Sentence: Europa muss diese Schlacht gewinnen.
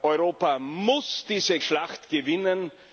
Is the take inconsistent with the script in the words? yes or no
no